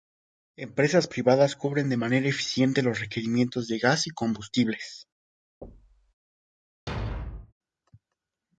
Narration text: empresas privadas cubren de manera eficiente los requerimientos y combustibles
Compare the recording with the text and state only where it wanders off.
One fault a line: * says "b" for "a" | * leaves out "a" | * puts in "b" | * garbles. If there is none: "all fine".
* puts in "de gas"